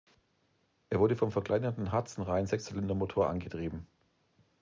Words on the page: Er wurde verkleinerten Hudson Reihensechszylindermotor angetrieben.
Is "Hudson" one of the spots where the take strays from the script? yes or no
no